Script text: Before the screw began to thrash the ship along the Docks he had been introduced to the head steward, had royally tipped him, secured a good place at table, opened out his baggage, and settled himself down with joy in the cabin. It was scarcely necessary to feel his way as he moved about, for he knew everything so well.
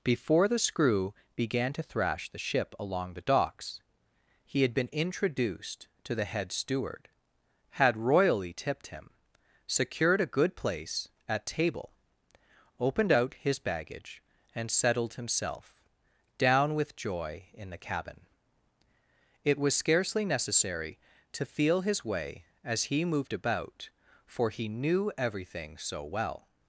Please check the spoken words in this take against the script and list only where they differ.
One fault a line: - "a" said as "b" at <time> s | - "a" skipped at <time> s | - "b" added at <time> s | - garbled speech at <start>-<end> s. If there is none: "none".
none